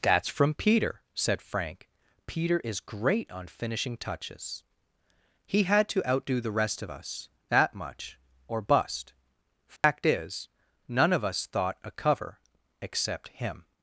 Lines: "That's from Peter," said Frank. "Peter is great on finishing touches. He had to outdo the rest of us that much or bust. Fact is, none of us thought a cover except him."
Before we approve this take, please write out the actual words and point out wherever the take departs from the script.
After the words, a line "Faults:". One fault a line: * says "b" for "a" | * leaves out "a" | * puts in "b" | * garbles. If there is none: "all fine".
"That's from Peter," said Frank. "Peter is great on finishing touches. He had to outdo the rest of us that much or bust. Fact is, none of us thought a cover except him."
Faults:
all fine